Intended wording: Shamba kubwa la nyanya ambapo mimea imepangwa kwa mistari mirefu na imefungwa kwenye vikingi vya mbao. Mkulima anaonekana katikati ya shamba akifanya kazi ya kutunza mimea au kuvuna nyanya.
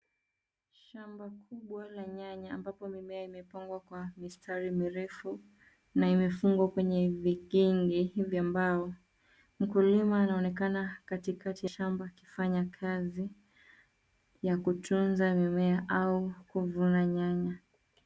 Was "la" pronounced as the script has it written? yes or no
yes